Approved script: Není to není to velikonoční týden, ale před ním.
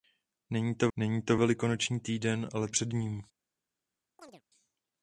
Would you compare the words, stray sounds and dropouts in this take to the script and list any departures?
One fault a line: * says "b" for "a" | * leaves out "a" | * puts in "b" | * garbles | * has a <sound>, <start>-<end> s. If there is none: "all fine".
* has a chirp, 4.2-4.4 s